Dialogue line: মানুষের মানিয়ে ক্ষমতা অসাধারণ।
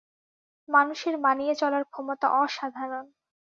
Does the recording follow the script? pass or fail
fail